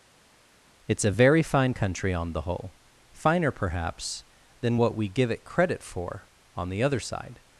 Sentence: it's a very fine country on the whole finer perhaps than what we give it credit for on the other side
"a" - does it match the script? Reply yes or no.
yes